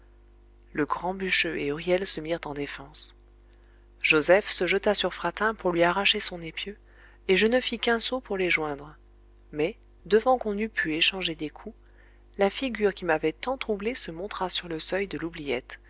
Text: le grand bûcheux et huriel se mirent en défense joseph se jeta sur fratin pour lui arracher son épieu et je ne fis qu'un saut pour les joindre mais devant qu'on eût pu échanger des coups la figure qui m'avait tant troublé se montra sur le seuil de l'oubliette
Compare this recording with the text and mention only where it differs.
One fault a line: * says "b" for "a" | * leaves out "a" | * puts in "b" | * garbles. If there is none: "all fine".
all fine